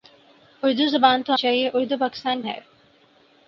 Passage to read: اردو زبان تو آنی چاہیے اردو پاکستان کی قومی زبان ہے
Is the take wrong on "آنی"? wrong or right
wrong